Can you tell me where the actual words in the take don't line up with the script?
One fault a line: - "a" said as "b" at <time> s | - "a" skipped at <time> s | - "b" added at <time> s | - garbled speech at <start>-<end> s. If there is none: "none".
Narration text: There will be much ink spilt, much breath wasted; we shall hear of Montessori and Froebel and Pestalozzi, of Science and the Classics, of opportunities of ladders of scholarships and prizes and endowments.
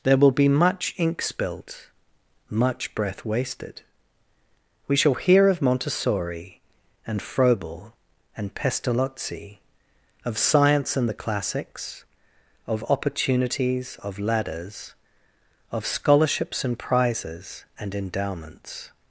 none